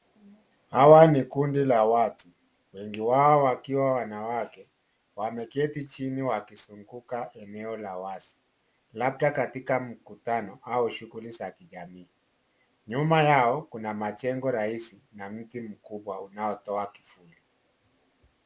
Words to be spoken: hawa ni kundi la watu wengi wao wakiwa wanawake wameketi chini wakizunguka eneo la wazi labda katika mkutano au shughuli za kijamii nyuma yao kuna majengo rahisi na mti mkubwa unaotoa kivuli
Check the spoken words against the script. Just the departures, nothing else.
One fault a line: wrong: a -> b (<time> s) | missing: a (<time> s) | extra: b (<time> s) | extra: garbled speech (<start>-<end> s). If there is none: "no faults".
no faults